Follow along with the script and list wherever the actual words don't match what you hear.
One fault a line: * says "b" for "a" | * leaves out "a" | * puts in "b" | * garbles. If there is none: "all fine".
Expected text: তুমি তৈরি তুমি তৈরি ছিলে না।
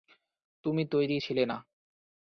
* leaves out "তুমি তৈরি"